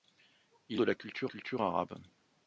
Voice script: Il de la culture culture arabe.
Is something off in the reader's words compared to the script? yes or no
no